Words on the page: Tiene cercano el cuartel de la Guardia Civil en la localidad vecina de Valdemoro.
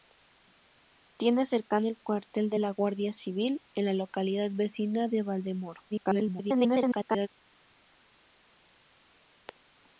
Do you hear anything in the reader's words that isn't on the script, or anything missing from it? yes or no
yes